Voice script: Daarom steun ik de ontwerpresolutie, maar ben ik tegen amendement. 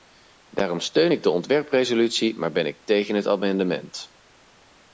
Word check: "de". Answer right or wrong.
right